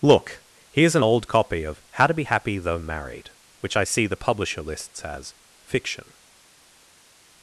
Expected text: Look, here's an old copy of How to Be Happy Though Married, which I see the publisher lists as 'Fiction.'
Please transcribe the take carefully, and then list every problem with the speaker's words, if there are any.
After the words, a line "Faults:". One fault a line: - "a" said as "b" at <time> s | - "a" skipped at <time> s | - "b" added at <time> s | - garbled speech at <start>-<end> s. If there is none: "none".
Look, here's an old copy of How to Be Happy Though Married, which I see the publisher lists as 'Fiction.'
Faults:
none